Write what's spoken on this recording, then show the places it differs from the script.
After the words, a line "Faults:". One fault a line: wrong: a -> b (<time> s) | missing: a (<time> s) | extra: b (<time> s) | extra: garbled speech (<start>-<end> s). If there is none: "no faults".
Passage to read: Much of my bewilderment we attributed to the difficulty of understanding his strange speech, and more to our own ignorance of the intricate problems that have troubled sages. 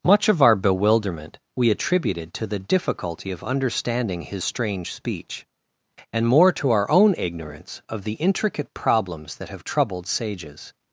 Much of our bewilderment we attributed to the difficulty of understanding his strange speech, and more to our own ignorance of the intricate problems that have troubled sages.
Faults:
wrong: my -> our (0.4 s)